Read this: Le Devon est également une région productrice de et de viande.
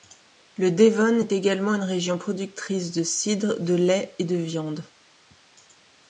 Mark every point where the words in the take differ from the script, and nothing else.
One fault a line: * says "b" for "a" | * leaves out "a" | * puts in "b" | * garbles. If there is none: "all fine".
* puts in "cidre de lait"